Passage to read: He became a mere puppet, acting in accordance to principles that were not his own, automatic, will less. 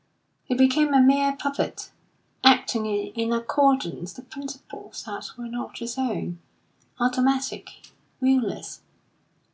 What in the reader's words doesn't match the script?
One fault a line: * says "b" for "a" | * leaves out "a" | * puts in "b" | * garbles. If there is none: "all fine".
all fine